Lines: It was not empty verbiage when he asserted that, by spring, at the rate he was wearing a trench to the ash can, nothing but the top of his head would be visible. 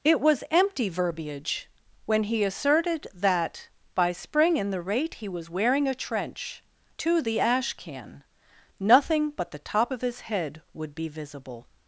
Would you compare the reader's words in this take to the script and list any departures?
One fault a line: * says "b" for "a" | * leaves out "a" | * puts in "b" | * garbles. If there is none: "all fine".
* leaves out "not"
* says "in" for "at"